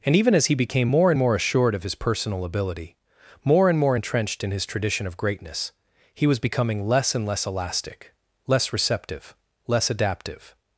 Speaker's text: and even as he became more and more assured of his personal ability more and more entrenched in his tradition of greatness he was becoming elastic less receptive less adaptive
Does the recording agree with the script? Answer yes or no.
no